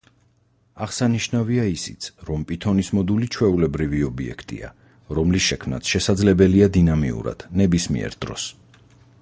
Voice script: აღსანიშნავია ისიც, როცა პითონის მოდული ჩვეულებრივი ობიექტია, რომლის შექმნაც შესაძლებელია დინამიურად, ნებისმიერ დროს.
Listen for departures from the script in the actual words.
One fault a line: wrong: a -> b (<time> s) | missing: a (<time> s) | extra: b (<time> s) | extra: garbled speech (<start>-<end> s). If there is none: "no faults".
wrong: როცა -> რომ (2.3 s)